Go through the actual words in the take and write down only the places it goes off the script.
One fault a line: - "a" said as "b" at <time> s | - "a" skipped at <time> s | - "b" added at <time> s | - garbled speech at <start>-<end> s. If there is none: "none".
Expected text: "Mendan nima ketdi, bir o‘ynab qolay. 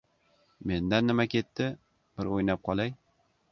none